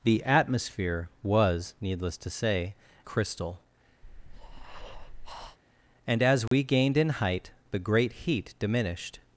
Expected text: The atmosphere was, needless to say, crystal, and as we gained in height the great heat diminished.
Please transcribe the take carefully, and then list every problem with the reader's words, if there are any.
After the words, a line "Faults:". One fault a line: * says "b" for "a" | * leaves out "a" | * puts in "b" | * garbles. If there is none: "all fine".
The atmosphere was, needless to say, crystal, and as we gained in height the great heat diminished.
Faults:
all fine